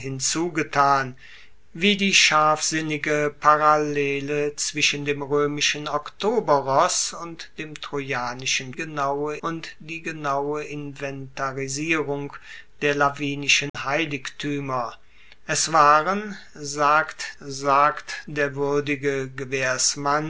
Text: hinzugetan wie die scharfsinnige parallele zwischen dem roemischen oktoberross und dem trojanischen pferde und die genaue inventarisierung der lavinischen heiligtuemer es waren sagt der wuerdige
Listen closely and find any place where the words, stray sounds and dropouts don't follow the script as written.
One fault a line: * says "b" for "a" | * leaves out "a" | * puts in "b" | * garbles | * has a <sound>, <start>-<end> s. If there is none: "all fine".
* says "genaue" for "pferde"
* has a dropout, 13.7-13.7 s
* puts in "sagt"